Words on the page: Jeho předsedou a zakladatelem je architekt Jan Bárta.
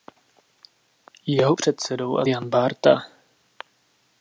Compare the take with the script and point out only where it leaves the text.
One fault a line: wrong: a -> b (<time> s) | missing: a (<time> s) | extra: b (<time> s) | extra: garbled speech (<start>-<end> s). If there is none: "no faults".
missing: zakladatelem je architekt (2.2 s)